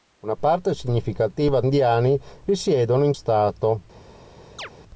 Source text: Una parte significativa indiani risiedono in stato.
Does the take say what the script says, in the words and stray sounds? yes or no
no